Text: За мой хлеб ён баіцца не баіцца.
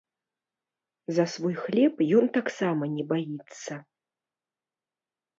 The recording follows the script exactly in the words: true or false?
false